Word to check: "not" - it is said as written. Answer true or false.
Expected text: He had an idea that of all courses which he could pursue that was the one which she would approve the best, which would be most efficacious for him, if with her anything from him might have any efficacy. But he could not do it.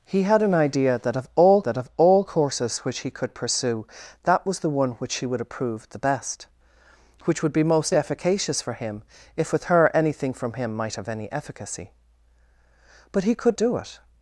false